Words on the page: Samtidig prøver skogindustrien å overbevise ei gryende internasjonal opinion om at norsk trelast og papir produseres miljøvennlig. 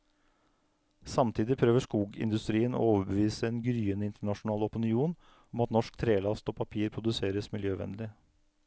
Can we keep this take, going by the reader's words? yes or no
no